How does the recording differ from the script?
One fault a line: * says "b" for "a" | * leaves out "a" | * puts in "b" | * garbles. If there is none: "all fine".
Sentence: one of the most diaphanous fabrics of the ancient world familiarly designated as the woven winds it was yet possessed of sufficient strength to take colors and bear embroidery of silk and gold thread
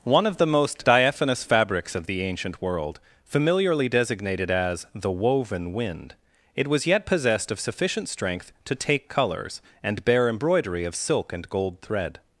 * says "wind" for "winds"